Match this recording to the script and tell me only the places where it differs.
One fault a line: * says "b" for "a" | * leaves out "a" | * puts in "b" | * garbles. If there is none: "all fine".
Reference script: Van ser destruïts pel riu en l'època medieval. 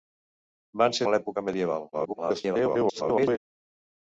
* leaves out "destruïts pel riu"
* garbles